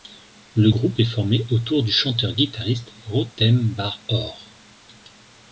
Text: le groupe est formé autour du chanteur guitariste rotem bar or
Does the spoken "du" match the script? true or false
true